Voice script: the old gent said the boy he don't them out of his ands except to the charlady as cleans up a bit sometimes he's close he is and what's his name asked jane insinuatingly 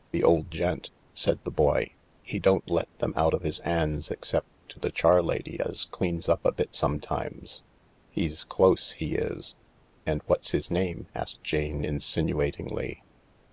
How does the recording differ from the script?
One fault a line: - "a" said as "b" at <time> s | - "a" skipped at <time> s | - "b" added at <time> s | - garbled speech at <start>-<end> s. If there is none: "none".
- "let" added at 2.7 s